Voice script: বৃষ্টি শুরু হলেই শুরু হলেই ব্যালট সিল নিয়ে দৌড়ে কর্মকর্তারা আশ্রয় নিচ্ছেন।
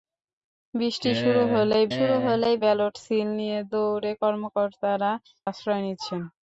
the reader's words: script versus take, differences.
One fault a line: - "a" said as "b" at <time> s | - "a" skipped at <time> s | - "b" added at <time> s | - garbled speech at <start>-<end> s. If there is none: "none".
none